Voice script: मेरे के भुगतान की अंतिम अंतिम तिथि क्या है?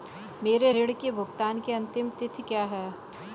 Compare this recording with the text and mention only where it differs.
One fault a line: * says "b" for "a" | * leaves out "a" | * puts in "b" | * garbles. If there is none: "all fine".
* puts in "ऋण"
* leaves out "अंतिम"